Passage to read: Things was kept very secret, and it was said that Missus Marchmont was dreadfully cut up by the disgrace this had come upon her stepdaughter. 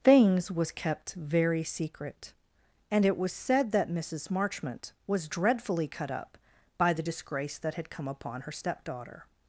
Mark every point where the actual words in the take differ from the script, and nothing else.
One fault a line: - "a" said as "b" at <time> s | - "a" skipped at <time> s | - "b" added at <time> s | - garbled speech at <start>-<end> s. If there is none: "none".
- "this" said as "that" at 7.6 s